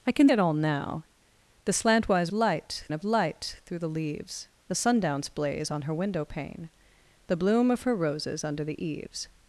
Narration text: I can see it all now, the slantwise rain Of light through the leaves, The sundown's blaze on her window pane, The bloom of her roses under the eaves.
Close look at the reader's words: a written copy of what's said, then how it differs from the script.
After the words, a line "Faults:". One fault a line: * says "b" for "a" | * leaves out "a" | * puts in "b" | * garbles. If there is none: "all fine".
I can it all now, the slantwise light Of light through the leaves, The sundown's blaze on her window pane, The bloom of her roses under the eaves.
Faults:
* leaves out "see"
* says "light" for "rain"